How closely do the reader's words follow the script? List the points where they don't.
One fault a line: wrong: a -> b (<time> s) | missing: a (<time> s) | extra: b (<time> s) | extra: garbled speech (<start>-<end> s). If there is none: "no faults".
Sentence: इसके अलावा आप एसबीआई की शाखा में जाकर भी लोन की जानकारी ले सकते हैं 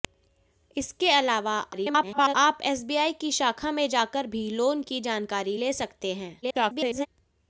extra: garbled speech (1.7-2.4 s)
extra: garbled speech (6.4-7.1 s)